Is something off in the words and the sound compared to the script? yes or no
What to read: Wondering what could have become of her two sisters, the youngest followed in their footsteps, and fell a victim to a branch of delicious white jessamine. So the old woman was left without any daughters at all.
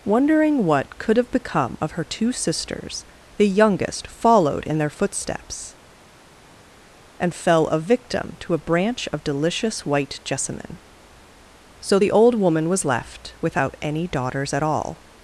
no